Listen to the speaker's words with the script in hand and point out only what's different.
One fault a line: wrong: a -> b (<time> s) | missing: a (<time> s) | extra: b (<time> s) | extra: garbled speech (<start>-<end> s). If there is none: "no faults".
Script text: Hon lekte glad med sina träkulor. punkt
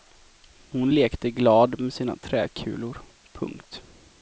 no faults